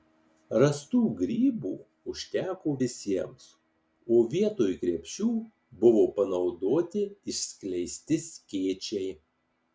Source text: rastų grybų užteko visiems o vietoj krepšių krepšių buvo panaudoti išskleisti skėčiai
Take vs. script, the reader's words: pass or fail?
fail